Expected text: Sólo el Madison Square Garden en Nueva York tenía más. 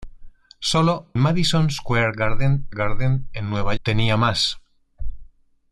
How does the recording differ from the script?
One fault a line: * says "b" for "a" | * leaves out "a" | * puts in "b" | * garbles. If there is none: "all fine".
* leaves out "el"
* puts in "Garden"
* leaves out "York"